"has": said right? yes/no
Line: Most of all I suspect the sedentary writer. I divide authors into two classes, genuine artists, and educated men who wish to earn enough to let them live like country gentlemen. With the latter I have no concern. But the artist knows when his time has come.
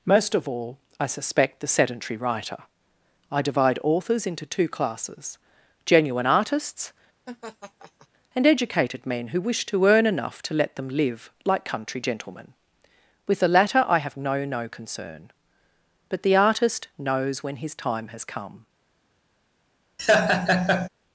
yes